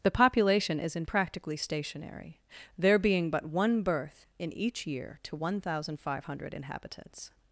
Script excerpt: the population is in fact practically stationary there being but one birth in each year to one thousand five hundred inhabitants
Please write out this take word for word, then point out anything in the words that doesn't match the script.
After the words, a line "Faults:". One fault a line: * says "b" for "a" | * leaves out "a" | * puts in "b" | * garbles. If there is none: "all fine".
the population is in practically stationary there being but one birth in each year to one thousand five hundred inhabitants
Faults:
* leaves out "fact"